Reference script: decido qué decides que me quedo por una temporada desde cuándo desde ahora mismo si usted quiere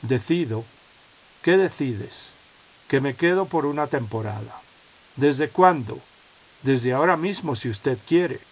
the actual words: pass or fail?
pass